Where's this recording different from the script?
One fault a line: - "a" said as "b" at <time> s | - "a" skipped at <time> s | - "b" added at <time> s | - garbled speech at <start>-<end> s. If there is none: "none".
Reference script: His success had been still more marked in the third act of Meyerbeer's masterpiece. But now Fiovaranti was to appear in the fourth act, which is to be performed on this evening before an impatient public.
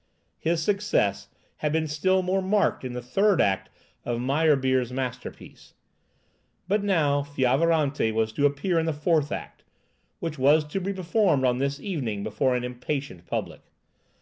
- "is" said as "was" at 10.4 s